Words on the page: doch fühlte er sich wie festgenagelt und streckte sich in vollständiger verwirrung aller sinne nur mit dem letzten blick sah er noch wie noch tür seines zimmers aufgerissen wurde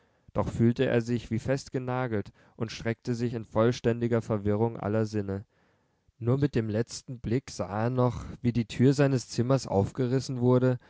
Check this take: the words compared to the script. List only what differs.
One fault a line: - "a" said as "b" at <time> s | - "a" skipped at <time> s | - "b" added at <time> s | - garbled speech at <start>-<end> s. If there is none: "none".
- "noch" said as "die" at 8.5 s